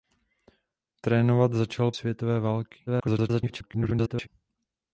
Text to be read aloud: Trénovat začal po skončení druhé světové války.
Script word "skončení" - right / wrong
wrong